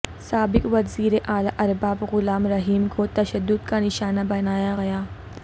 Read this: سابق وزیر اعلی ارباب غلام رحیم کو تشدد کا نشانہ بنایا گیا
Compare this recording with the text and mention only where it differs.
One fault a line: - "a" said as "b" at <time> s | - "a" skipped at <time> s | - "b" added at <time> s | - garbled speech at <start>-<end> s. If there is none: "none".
none